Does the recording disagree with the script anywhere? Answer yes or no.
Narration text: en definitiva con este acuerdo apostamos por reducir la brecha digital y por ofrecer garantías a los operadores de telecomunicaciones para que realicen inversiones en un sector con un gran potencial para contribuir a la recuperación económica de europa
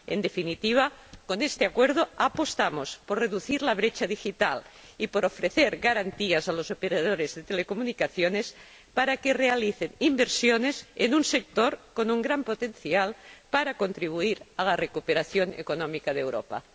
no